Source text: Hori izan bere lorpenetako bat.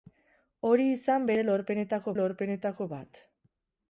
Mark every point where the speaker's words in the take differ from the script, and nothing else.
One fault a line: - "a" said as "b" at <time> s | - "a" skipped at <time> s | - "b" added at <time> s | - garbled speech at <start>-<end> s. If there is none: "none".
- "lorpenetako" added at 2.2 s